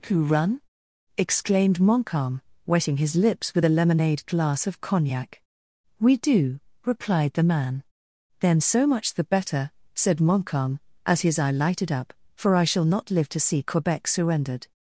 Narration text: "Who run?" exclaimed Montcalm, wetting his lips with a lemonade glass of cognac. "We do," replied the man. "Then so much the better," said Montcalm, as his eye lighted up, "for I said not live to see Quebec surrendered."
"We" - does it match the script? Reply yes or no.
yes